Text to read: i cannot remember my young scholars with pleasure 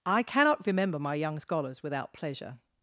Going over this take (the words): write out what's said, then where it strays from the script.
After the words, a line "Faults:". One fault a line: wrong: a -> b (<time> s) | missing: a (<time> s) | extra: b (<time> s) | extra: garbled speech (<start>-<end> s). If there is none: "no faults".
i cannot remember my young scholars without pleasure
Faults:
wrong: with -> without (1.8 s)